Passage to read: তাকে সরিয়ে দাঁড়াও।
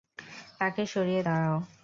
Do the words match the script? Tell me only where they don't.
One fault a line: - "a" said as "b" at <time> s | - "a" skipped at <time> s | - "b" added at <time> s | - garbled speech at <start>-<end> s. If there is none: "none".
none